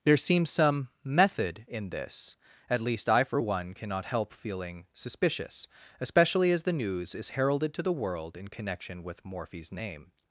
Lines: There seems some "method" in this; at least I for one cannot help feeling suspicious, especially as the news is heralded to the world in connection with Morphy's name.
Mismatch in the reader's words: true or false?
false